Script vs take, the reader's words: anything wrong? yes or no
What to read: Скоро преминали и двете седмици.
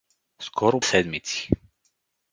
yes